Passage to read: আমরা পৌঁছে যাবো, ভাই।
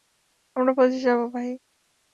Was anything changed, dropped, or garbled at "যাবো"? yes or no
no